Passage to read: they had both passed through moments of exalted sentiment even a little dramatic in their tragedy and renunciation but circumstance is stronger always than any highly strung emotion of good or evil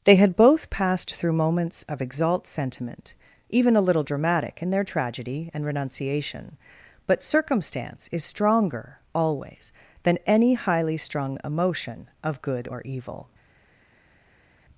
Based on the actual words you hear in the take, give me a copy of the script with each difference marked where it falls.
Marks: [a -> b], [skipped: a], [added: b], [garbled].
they had both passed through moments of [exalted -> exalt] sentiment even a little dramatic in their tragedy and renunciation but circumstance is stronger always than any highly strung emotion of good or evil